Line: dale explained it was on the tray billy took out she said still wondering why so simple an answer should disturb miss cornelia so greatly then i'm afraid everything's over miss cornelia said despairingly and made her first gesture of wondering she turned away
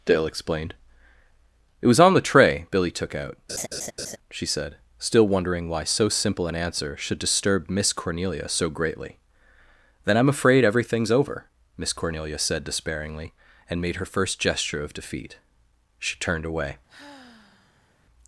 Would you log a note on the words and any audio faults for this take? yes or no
yes